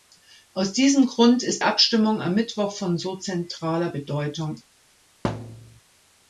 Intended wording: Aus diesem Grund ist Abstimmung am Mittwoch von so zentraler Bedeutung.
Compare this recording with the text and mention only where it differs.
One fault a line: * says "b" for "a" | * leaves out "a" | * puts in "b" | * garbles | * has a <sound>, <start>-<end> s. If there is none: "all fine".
* has a thud, 5.2-5.8 s